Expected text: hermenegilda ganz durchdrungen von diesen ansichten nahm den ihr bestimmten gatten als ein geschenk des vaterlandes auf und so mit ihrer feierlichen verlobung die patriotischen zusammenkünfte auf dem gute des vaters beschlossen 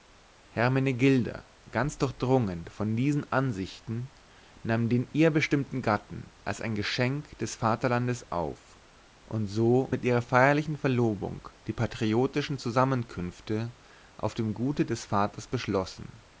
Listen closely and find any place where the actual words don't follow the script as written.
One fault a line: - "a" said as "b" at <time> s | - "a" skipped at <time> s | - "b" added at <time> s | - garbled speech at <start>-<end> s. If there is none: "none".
none